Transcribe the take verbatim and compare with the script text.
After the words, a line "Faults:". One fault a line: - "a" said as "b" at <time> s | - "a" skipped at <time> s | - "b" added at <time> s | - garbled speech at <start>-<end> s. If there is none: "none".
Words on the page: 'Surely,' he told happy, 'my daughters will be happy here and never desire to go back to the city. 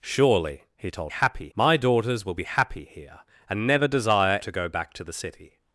'Surely,' he told happy, 'my daughters will be happy here and never desire to go back to the city.
Faults:
none